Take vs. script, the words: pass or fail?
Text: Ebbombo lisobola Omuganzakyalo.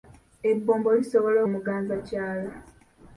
pass